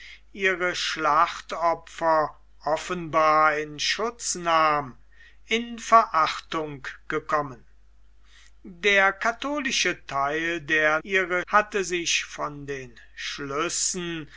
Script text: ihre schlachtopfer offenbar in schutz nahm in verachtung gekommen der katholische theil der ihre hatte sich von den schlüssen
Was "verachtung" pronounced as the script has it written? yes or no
yes